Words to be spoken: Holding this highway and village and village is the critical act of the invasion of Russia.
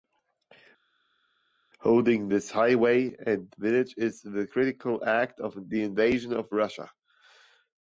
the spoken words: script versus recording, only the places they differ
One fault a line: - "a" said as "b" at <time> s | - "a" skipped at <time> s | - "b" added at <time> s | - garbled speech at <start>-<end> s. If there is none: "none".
- "and village" skipped at 3.9 s